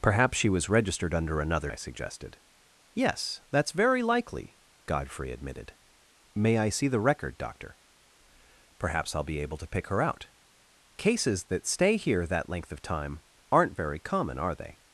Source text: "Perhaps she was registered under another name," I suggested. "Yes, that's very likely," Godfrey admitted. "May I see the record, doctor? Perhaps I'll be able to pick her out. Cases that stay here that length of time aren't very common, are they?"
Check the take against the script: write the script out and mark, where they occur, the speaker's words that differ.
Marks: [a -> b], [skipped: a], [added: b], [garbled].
"Perhaps she was registered under another [skipped: name,"] I suggested. "Yes, that's very likely," Godfrey admitted. "May I see the record, doctor? Perhaps I'll be able to pick her out. Cases that stay here that length of time aren't very common, are they?"